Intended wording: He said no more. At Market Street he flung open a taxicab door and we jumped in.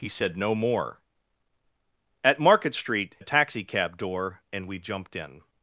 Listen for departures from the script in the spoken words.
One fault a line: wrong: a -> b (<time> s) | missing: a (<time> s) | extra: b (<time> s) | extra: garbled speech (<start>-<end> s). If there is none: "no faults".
missing: he flung open (3.2 s)